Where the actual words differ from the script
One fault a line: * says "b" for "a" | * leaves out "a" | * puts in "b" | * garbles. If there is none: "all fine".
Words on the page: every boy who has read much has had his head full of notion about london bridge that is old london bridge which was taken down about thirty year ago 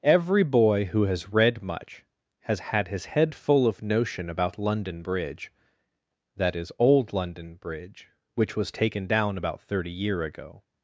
all fine